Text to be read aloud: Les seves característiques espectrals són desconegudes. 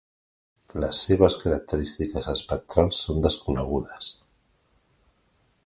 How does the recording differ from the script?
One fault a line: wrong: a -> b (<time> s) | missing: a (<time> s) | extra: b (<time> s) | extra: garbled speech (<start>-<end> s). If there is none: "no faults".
no faults